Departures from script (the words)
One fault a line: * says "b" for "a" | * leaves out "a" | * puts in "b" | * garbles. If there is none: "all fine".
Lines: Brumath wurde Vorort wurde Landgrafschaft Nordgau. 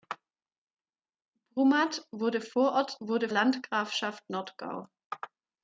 all fine